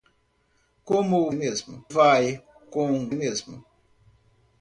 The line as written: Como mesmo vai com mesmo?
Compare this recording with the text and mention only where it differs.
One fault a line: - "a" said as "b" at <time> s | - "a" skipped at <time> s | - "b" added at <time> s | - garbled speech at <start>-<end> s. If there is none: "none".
none